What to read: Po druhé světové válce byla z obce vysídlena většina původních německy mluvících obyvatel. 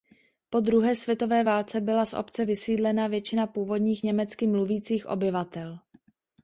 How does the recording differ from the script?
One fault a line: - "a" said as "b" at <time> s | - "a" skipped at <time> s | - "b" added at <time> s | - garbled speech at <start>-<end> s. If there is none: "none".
none